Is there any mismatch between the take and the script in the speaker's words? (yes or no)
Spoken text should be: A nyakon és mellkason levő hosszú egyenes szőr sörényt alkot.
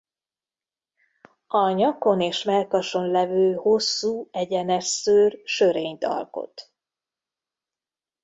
no